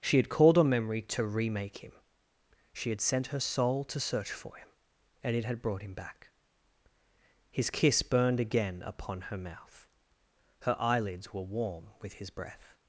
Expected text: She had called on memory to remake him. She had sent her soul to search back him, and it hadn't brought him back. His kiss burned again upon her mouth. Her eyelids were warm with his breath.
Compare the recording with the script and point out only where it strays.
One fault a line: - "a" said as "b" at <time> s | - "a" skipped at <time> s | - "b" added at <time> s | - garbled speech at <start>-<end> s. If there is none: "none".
- "back" said as "for" at 4.3 s
- "hadn't" said as "had" at 5.5 s